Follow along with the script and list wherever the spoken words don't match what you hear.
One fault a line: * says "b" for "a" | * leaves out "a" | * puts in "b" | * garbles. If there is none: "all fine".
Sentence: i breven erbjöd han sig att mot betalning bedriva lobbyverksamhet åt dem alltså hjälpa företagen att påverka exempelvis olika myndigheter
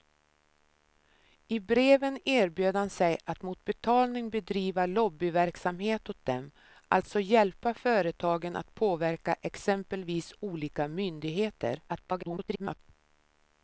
* garbles